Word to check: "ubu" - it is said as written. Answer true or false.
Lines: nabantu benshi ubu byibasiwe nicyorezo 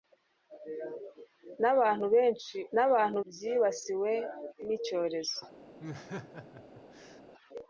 false